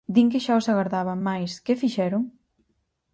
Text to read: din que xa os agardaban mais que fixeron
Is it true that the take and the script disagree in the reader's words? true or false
false